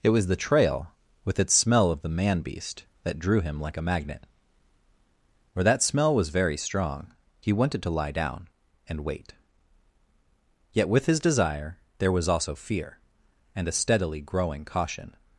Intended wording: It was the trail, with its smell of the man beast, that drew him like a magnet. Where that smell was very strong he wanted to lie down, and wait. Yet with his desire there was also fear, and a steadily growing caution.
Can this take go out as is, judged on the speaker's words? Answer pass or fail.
pass